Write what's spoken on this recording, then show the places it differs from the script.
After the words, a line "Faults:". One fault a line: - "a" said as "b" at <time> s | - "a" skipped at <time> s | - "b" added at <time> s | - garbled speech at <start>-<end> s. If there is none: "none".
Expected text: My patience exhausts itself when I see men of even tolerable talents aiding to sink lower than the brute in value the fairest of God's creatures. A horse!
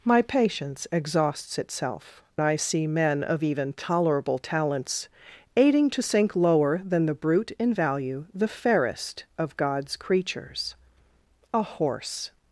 My patience exhausts itself I see men of even tolerable talents aiding to sink lower than the brute in value the fairest of God's creatures. A horse!
Faults:
- "when" skipped at 2.2 s